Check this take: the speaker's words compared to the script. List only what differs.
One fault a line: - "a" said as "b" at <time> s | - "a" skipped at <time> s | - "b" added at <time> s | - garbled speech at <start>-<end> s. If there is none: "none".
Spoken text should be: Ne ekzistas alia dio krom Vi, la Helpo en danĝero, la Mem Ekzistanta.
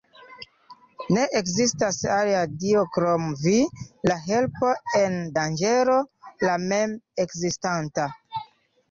none